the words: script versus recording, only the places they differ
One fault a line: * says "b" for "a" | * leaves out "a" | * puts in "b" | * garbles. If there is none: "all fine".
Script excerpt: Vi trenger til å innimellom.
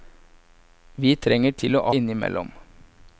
all fine